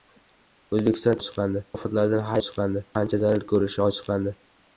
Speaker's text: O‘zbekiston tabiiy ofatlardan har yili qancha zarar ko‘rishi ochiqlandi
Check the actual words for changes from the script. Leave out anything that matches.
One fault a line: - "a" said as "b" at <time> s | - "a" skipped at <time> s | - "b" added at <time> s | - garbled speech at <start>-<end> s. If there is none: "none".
- "tabiiy" said as "ochiqlandi" at 1.2 s
- "yili" said as "ochiqlandi" at 2.4 s